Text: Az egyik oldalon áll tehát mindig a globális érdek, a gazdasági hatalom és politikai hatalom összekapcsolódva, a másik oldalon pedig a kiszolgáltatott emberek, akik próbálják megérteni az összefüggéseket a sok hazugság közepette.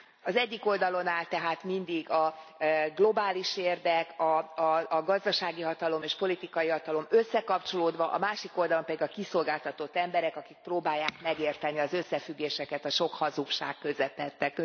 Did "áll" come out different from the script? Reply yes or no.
no